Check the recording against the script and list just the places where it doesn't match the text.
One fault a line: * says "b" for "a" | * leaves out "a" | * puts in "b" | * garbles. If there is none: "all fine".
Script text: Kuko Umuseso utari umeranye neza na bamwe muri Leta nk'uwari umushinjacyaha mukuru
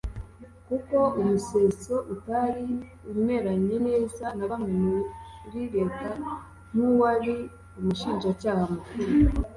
all fine